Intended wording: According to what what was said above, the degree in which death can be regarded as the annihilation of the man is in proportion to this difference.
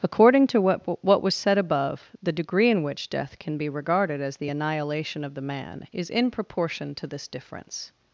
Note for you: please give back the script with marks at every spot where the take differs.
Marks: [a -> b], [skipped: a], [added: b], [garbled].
According to what what was said above, the degree in which death can be regarded as the annihilation of the man is in proportion to this difference.